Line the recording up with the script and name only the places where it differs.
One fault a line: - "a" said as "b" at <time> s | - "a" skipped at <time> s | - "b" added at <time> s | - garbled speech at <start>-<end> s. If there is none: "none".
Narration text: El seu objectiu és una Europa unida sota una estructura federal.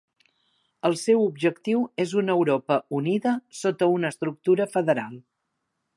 none